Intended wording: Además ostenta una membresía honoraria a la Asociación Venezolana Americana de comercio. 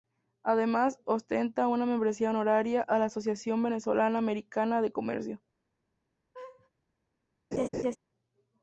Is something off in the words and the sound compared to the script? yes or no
yes